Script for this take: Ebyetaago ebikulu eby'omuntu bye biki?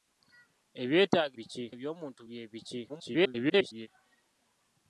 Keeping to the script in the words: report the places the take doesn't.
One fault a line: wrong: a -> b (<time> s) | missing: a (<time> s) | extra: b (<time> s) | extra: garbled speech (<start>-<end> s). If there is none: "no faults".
wrong: ebikulu -> biki (1.4 s)
extra: garbled speech (2.9-3.9 s)